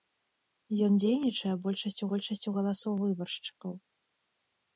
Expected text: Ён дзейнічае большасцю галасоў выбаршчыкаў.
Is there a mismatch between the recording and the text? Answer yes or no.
yes